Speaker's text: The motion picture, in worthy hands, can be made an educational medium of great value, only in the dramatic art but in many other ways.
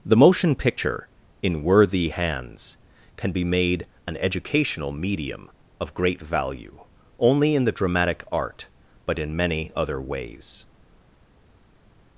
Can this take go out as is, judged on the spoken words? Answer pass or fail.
pass